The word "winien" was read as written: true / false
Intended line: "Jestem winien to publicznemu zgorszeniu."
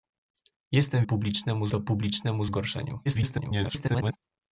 false